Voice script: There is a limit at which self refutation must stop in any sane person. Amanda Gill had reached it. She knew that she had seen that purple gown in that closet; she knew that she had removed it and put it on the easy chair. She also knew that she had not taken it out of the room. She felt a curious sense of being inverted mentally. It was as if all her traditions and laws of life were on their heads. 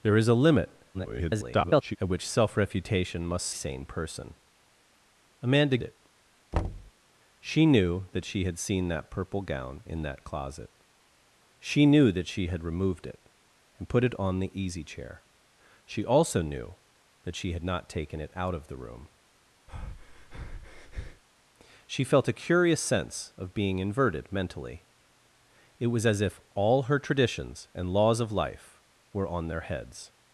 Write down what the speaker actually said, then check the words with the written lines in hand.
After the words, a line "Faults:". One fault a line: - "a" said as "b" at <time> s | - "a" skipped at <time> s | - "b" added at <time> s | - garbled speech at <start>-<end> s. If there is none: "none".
There is a limit [garbled] at which self refutation must sane person. Amanda It. She knew that she had seen that purple gown in that closet; she knew that she had removed it and put it on the easy chair. She also knew that she had not taken it out of the room. She felt a curious sense of being inverted mentally. It was as if all her traditions and laws of life were on their heads.
Faults:
- garbled speech at 0.9-2.0 s
- "stop in any" skipped at 3.5 s
- "Gill had reached" skipped at 5.8 s